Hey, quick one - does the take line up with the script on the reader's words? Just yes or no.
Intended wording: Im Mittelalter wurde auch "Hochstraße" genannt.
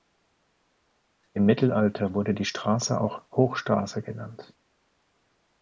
no